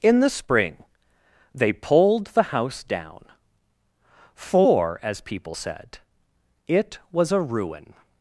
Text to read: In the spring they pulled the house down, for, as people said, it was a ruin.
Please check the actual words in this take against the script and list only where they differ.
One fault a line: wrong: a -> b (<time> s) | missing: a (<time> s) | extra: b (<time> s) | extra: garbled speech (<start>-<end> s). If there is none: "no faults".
no faults